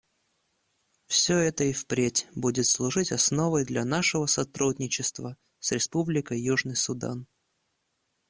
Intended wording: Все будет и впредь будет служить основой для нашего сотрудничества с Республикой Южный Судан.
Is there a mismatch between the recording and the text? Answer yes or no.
yes